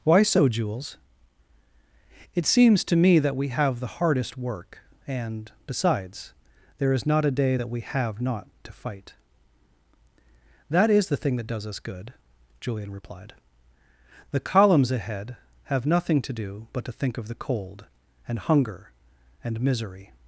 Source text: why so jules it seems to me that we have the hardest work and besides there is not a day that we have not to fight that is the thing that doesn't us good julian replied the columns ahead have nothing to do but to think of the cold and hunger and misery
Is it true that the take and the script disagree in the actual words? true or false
true